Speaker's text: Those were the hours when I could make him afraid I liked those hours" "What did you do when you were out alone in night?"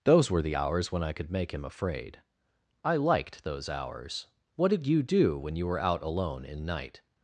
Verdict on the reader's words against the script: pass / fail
pass